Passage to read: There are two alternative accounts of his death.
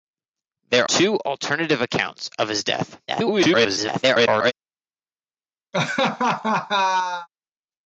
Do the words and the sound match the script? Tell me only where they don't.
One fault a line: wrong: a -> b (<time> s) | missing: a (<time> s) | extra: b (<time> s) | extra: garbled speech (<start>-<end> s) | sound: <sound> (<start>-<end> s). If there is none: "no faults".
missing: are (0.9 s)
extra: garbled speech (3.1-4.5 s)
sound: laugh (5.7-7.3 s)